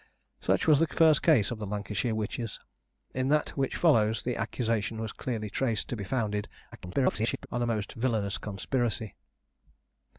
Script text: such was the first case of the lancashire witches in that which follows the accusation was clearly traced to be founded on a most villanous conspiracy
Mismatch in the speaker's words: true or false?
true